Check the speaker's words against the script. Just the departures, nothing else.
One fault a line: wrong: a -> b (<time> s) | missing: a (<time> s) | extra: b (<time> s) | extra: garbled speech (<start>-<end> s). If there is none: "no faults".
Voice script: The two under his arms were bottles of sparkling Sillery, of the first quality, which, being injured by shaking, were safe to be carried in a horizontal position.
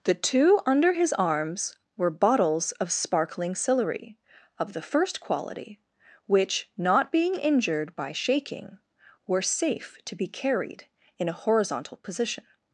extra: not (6.8 s)